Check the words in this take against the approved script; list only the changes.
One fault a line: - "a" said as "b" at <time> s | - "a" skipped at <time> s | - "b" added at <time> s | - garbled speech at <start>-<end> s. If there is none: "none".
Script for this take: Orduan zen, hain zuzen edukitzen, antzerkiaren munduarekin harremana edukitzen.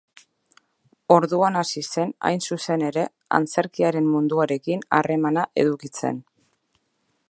- "hasi" added at 1.6 s
- "edukitzen" said as "ere" at 2.9 s